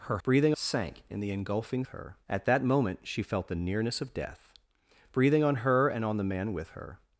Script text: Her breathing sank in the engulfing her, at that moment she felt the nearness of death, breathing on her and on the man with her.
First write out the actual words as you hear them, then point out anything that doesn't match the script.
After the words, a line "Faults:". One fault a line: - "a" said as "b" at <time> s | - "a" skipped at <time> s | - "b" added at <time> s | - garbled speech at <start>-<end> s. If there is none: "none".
Her breathing sank in the engulfing her, at that moment she felt the nearness of death, breathing on her and on the man with her.
Faults:
none